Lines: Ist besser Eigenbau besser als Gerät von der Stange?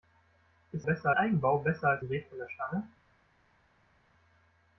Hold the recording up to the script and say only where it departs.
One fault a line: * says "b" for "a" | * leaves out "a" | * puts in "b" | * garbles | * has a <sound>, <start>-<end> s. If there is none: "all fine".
all fine